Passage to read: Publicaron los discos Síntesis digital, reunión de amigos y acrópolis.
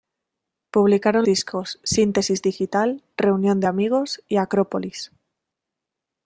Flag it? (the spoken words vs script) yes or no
yes